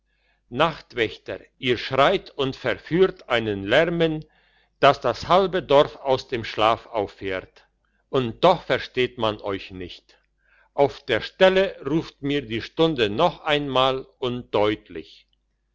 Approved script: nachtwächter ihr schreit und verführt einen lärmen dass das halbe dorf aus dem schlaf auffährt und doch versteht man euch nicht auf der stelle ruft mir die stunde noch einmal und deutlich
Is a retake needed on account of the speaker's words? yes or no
no